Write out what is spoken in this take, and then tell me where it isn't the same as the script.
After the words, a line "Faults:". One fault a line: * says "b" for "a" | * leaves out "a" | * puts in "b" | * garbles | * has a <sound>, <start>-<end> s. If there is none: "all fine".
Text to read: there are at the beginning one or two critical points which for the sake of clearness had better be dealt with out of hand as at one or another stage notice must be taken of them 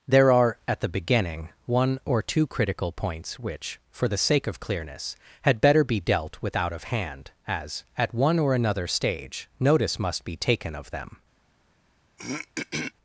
there are at the beginning one or two critical points which for the sake of clearness had better be dealt with out of hand as at one or another stage notice must be taken of them
Faults:
* has a throat clearing, 12.2-12.9 s